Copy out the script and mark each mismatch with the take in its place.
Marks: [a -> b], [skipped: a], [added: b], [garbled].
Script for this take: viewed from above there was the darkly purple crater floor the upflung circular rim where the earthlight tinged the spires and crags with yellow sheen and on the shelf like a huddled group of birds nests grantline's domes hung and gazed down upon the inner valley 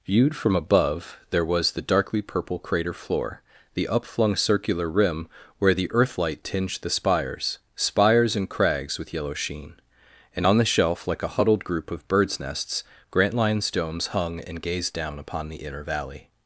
viewed from above there was the darkly purple crater floor the upflung circular rim where the earthlight tinged the spires [added: spires] and crags with yellow sheen and on the shelf like a huddled group of birds nests grantline's domes hung and gazed down upon the inner valley